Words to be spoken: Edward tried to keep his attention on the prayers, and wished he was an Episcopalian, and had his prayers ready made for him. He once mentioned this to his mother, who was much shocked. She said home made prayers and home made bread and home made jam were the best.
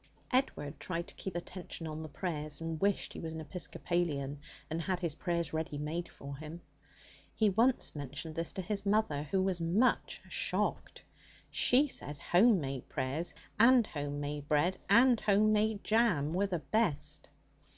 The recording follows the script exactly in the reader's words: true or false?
false